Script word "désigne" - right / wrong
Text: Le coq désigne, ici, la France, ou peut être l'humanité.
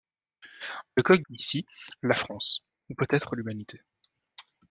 wrong